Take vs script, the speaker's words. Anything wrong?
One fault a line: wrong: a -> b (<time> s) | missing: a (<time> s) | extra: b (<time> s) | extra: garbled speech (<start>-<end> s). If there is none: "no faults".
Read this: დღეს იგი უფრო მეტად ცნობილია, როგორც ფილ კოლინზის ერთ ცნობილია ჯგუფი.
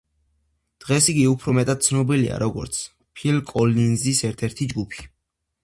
wrong: ცნობილია -> ერთი (4.5 s)